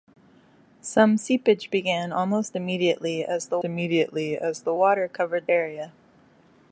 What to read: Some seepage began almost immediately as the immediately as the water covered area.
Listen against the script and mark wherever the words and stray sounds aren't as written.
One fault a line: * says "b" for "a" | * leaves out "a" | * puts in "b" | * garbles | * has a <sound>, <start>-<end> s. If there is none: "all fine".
all fine